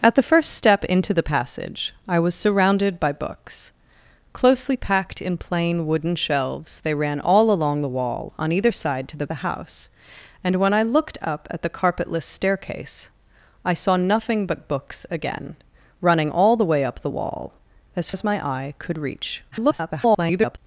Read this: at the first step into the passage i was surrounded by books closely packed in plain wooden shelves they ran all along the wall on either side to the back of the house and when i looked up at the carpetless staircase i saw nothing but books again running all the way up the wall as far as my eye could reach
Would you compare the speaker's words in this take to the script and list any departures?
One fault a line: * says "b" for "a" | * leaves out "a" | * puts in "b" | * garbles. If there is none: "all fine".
* leaves out "back of"
* leaves out "far"
* garbles